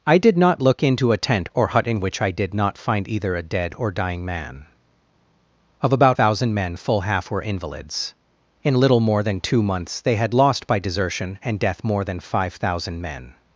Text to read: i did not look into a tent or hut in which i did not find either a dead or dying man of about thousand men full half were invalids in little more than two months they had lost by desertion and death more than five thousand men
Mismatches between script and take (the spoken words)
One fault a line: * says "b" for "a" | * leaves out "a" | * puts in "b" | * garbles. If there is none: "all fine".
all fine